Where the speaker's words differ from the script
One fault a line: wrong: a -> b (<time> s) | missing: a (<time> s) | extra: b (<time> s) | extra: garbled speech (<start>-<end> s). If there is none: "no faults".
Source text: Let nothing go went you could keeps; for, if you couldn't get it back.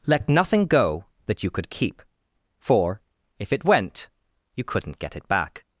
wrong: went -> that (1.3 s)
wrong: keeps -> keep (1.7 s)
extra: it went (3.5 s)